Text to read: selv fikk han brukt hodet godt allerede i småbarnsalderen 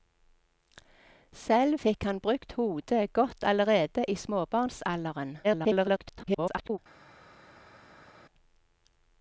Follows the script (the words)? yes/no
no